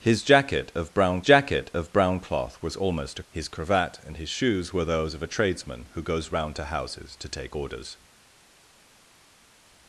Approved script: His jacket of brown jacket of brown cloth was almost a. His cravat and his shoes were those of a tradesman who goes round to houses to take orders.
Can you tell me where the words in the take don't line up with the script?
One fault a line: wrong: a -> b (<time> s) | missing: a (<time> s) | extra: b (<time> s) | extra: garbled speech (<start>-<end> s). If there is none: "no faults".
no faults